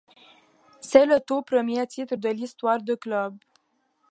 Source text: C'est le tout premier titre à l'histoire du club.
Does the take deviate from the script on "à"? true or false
true